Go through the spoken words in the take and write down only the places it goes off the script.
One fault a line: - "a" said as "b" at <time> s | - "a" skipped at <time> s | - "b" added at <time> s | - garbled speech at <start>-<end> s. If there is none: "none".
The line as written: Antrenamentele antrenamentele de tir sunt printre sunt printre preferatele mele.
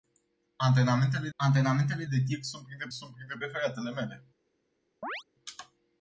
none